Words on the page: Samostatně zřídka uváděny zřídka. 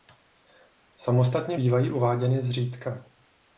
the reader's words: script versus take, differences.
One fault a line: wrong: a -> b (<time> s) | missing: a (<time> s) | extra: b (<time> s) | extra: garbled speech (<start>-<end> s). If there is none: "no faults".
wrong: zřídka -> bývají (1.5 s)